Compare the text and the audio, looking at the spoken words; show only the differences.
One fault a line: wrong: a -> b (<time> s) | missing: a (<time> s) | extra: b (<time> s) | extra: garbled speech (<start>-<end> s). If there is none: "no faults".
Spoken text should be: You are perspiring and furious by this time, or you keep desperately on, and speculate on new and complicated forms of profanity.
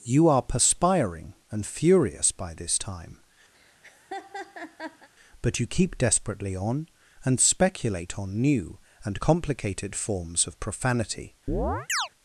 wrong: or -> but (5.4 s)